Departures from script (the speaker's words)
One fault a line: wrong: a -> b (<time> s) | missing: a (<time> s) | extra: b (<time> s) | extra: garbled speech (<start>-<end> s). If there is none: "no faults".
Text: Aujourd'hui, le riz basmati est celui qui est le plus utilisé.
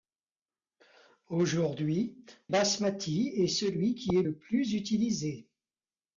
missing: le riz (2.2 s)